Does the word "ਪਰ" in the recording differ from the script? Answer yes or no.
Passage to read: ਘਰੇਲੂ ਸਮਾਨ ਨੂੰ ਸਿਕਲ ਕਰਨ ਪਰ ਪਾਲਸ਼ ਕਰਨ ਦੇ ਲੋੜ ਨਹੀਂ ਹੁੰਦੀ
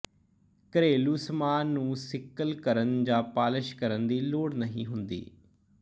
yes